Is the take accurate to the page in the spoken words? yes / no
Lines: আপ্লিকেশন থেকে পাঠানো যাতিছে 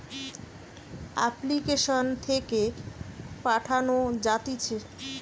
yes